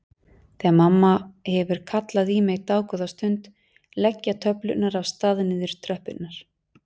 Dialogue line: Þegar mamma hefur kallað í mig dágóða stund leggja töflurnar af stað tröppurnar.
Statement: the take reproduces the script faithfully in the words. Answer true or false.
false